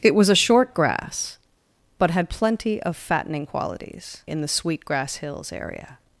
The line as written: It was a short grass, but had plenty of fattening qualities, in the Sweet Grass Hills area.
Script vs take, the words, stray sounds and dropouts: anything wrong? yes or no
no